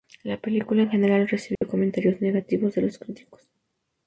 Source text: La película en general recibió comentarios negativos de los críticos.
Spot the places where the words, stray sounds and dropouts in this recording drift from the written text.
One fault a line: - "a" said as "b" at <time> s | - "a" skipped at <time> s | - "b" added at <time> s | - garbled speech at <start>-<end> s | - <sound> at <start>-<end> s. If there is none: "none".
- dropout at 1.5-1.6 s